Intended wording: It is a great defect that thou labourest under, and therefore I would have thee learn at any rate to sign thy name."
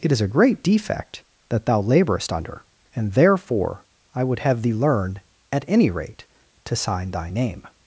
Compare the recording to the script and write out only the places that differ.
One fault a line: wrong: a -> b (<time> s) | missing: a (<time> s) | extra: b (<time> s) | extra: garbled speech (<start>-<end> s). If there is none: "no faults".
no faults